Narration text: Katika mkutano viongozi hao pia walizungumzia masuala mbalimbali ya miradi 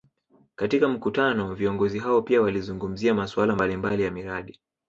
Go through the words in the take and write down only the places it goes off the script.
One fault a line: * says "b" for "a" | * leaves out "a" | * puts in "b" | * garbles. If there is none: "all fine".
all fine